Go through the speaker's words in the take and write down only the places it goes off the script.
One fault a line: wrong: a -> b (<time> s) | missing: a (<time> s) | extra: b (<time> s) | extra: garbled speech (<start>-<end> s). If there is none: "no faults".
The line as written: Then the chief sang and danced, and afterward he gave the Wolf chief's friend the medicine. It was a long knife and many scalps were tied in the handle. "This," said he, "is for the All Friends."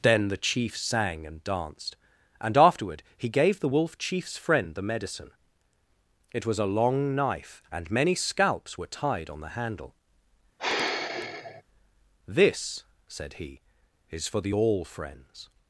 wrong: in -> on (9.3 s)